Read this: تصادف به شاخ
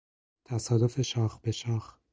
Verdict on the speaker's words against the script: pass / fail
fail